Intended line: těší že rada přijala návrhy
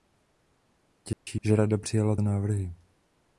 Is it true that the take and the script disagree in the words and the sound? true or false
true